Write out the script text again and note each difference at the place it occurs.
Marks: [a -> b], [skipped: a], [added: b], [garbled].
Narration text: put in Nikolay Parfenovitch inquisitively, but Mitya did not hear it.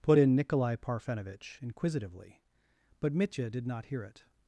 put in Nikolay Parfenovitch inquisitively, but Mitya did not hear it.